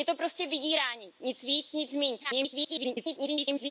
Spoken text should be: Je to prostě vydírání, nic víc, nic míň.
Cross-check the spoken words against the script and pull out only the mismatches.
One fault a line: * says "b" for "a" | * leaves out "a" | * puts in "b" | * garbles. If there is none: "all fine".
* garbles